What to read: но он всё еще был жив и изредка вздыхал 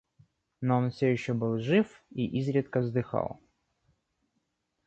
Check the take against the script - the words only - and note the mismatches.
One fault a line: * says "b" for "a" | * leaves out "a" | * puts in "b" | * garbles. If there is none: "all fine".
all fine